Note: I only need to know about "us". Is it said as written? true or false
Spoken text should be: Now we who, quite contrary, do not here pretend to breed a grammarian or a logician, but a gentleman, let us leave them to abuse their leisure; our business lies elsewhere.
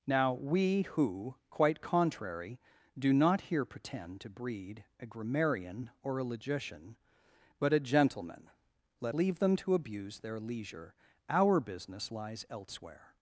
false